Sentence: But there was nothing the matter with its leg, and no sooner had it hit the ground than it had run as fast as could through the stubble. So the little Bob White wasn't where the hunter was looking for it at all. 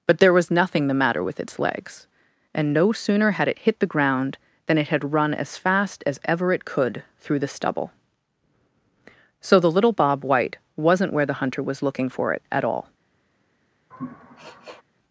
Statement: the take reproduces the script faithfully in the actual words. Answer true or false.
false